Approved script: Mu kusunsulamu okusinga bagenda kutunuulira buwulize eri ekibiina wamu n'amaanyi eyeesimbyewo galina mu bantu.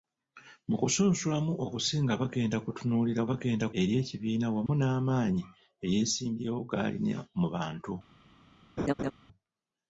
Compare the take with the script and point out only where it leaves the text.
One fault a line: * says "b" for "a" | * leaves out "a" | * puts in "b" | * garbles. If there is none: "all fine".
* says "bagenda" for "buwulize"